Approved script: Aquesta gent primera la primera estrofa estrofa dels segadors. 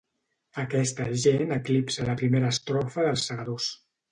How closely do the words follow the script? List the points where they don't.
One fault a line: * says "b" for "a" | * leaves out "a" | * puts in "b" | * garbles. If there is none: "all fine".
* says "eclipsa" for "primera"
* leaves out "estrofa"